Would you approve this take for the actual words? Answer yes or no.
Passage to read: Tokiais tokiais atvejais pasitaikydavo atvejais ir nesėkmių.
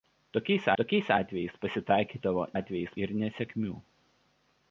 yes